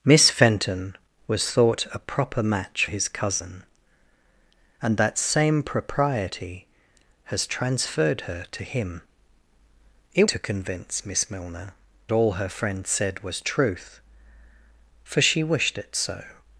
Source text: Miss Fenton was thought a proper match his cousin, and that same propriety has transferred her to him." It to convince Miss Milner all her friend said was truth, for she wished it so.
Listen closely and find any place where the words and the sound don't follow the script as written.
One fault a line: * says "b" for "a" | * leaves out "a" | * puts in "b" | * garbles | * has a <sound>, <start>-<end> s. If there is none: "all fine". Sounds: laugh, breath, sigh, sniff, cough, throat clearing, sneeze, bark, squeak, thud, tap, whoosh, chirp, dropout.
all fine